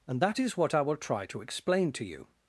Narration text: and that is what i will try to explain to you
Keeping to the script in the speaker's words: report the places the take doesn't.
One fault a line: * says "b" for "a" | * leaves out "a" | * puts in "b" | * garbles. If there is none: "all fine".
all fine